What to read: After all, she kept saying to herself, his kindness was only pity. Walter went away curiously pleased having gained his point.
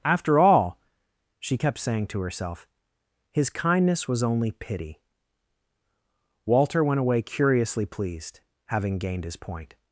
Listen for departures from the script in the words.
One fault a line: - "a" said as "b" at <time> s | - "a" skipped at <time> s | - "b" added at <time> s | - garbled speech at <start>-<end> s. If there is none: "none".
none